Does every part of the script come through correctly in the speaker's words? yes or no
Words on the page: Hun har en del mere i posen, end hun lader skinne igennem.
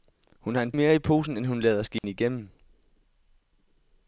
no